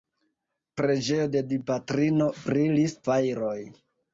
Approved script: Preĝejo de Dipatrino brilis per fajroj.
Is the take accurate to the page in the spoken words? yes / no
no